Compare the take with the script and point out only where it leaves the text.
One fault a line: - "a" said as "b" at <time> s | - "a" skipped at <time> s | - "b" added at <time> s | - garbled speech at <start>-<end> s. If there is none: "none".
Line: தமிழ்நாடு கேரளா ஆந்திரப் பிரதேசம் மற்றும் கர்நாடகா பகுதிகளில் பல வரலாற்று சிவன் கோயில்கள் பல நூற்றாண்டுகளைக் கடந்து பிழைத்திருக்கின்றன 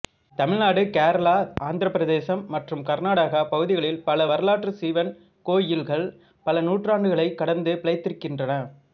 none